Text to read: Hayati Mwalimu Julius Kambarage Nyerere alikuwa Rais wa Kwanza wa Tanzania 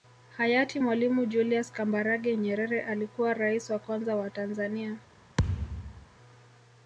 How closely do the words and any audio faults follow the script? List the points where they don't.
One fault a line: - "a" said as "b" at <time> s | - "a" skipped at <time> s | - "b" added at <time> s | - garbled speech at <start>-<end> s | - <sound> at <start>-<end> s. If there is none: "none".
- thud at 5.4-6.1 s